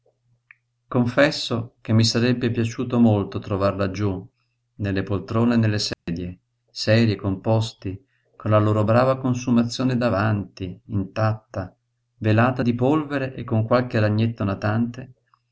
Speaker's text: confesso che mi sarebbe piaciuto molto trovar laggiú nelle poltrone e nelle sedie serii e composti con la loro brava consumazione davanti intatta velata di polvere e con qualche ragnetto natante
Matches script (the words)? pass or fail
pass